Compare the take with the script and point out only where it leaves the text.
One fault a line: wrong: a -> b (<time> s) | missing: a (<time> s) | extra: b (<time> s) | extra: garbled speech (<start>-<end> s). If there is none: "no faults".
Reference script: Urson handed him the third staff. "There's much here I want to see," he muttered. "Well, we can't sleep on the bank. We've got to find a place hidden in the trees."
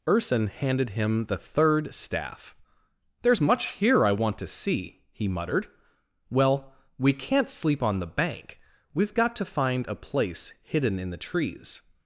no faults